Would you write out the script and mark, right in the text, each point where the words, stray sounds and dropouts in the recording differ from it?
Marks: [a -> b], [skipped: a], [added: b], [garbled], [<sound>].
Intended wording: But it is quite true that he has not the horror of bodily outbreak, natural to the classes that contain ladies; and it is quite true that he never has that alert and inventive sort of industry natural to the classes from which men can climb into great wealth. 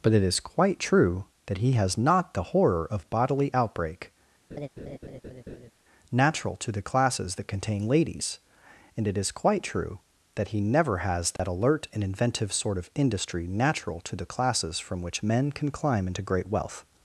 But it is quite true that he has not the horror of bodily outbreak, [laugh] natural to the classes that contain ladies; and it is quite true that he never has that [dropout] alert and inventive sort of industry natural to the classes from which men can climb into great wealth.